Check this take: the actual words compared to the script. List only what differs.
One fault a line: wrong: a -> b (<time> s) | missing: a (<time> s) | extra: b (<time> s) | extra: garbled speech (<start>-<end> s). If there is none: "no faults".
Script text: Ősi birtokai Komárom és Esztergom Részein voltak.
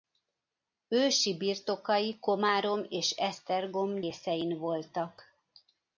no faults